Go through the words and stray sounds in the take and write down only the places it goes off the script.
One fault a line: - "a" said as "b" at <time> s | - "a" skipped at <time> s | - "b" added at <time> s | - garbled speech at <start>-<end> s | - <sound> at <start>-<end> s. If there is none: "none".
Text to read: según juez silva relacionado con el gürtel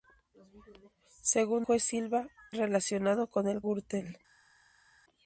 none